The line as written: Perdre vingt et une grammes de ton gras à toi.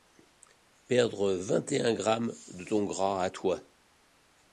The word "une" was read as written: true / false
false